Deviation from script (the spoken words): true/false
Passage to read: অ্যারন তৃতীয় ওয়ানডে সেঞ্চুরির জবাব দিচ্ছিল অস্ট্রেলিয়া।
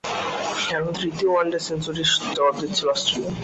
false